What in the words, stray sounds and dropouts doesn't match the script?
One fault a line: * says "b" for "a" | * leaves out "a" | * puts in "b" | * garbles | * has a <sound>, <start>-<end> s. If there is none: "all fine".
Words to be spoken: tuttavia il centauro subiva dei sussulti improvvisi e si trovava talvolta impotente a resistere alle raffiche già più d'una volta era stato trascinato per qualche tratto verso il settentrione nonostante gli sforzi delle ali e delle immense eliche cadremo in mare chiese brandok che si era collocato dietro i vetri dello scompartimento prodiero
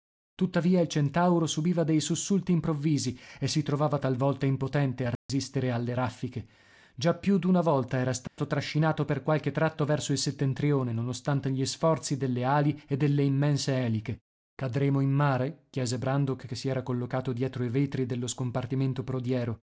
* has a dropout, 5.2-5.3 s
* has a dropout, 8.3-8.4 s